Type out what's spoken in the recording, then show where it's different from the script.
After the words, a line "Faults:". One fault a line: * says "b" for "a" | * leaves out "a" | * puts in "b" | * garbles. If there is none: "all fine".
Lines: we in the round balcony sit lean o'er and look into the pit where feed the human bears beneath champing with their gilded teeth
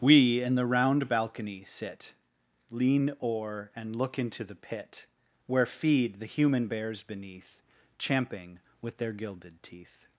we in the round balcony sit lean o'er and look into the pit where feed the human bears beneath champing with their gilded teeth
Faults:
all fine